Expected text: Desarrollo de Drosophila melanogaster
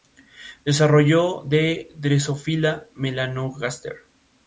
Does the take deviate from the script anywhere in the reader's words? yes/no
no